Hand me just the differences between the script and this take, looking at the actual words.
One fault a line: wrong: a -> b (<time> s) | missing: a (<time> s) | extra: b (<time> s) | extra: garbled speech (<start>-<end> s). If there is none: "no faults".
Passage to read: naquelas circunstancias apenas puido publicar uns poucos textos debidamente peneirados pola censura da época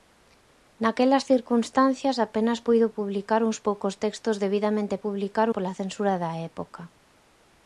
wrong: peneirados -> publicar (5.0 s)